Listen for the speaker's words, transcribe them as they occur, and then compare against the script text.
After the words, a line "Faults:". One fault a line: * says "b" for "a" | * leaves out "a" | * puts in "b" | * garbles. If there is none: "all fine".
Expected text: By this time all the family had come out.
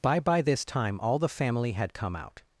By by this time all the family had come out.
Faults:
* puts in "by"